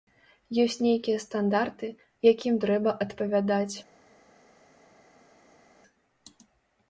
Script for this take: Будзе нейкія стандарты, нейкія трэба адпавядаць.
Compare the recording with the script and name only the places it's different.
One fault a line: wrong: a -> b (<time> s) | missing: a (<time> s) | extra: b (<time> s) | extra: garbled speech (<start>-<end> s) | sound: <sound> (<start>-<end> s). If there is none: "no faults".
wrong: Будзе -> Ёсць (0.6 s)
wrong: нейкія -> якім (2.3 s)